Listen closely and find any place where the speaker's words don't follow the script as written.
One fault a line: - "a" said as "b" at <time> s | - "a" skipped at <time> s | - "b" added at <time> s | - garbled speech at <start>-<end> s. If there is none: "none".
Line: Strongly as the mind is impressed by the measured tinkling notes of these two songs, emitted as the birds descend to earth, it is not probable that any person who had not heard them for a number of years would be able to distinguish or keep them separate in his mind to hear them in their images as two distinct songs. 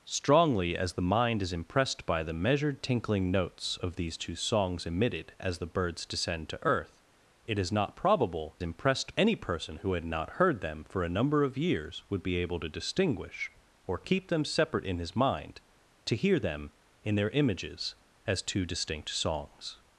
- "that" said as "impressed" at 8.6 s